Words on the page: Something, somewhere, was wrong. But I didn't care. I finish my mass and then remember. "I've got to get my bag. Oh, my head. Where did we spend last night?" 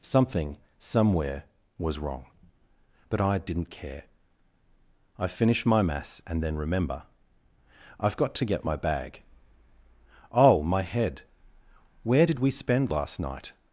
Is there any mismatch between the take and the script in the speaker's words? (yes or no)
no